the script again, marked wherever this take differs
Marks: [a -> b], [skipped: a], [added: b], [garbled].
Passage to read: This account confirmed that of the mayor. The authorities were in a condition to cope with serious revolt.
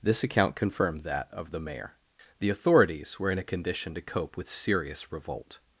This account confirmed that of the mayor. The authorities were in a condition to cope with serious revolt.